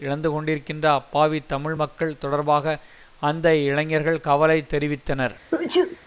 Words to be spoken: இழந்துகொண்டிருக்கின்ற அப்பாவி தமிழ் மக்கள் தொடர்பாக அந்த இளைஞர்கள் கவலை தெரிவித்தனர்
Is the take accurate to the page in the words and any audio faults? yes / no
no